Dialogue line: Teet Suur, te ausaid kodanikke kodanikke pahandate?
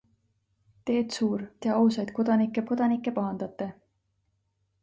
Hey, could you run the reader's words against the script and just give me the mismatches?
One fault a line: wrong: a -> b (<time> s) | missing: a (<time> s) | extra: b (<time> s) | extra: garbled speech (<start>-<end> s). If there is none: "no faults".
no faults